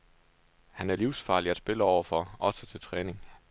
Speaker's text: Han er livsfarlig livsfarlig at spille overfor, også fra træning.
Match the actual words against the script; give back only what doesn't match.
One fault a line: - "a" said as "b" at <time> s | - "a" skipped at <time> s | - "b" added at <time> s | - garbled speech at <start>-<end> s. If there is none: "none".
- "livsfarlig" skipped at 1.5 s
- "fra" said as "til" at 2.7 s